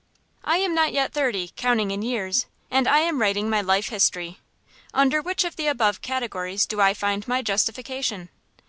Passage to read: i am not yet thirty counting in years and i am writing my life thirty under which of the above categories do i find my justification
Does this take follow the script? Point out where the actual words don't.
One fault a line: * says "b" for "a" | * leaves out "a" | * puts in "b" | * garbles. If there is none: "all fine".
* says "history" for "thirty"